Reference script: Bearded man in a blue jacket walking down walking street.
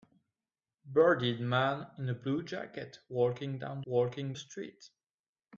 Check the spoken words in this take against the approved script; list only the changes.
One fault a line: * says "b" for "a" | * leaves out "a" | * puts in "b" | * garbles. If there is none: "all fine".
all fine